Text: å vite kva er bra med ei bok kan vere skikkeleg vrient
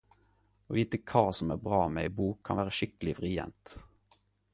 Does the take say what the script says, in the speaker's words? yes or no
no